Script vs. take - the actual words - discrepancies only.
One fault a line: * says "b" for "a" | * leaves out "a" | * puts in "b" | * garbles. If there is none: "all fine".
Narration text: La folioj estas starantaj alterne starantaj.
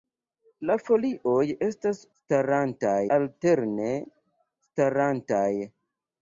all fine